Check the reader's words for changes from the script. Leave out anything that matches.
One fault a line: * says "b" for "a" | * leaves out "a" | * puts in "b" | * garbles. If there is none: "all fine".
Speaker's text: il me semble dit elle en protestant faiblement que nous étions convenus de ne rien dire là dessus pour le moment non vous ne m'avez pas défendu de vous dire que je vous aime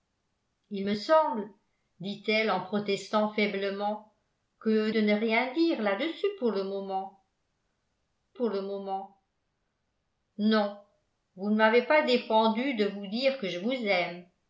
* leaves out "nous étions convenus"
* puts in "pour le moment"